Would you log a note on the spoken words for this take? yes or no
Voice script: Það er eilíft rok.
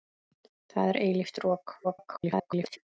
yes